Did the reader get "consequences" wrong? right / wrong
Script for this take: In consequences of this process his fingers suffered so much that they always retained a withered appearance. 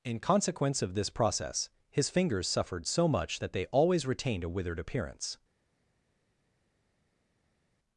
wrong